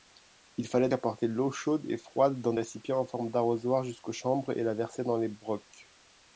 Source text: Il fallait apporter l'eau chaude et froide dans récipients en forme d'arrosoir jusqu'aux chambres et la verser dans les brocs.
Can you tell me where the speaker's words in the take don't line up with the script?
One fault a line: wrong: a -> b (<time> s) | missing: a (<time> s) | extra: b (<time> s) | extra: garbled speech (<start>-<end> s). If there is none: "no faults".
no faults